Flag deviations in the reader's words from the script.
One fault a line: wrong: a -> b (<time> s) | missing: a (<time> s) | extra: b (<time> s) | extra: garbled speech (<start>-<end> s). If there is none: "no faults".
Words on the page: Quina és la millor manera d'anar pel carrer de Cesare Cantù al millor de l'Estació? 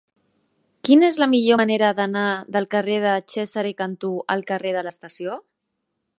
wrong: pel -> del (2.6 s)
wrong: millor -> carrer (4.5 s)